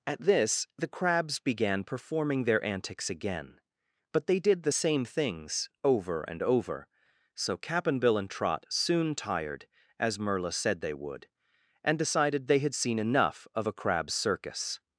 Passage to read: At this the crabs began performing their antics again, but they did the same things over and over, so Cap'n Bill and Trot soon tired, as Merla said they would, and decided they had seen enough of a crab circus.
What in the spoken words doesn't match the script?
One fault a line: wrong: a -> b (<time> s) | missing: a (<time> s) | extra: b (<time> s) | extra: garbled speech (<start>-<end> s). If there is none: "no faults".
no faults